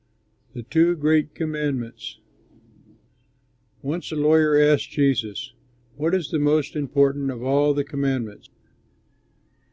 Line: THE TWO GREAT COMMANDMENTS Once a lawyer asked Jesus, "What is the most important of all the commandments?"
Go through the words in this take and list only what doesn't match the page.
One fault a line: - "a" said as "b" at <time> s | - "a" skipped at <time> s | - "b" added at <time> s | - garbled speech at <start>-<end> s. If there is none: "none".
none